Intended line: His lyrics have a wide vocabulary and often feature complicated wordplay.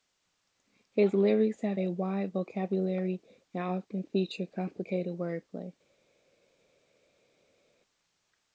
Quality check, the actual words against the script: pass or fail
pass